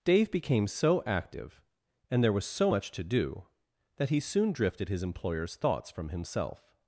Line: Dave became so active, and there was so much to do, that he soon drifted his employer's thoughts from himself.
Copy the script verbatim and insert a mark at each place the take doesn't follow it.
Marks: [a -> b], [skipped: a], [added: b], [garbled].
Dave became so active, and there was so much to do, that he soon drifted his employer's thoughts from himself.